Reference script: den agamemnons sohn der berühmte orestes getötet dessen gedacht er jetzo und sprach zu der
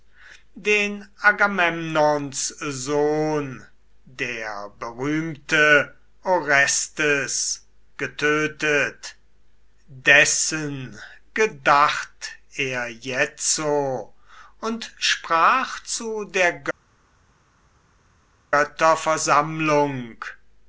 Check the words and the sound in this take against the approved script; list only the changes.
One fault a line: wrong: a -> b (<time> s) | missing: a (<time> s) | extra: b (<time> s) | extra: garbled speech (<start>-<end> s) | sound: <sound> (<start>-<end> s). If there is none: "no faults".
no faults